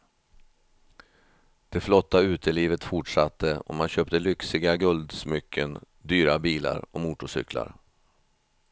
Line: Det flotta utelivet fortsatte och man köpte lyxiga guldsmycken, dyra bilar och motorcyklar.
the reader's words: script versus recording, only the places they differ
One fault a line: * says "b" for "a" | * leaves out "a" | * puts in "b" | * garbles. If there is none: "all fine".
all fine